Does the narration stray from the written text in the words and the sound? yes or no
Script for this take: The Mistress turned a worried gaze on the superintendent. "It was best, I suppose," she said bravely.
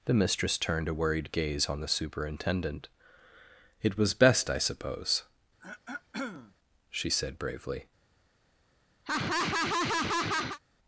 yes